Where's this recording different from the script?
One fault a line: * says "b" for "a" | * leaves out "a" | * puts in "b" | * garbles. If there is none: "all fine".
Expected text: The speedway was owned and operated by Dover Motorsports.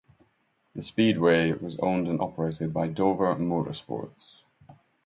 all fine